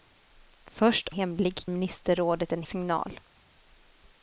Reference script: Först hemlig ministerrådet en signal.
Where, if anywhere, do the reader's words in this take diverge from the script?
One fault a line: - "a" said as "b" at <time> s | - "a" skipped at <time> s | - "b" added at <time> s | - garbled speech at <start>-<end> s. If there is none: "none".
none